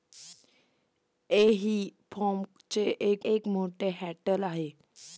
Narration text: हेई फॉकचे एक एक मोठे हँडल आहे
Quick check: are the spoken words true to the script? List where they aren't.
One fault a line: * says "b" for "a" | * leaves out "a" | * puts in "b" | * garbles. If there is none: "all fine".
all fine